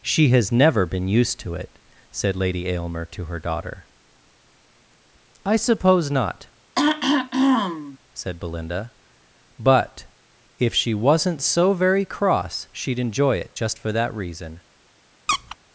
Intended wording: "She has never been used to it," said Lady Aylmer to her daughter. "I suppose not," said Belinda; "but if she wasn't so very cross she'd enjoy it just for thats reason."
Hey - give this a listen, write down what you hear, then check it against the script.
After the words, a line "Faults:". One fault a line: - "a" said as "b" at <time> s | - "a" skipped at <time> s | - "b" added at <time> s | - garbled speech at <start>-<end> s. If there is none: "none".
"She has never been used to it," said Lady Aylmer to her daughter. "I suppose not," said Belinda; "but if she wasn't so very cross she'd enjoy it just for that reason."
Faults:
- "thats" said as "that" at 13.9 s